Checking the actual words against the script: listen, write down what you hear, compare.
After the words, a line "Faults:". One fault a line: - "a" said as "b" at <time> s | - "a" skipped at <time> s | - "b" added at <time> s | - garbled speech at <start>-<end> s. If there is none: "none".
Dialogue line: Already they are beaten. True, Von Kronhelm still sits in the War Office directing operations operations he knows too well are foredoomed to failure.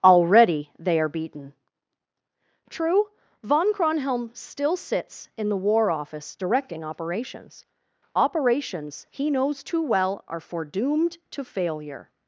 Already they are beaten. True, Von Kronhelm still sits in the War Office directing operations operations he knows too well are foredoomed to failure.
Faults:
none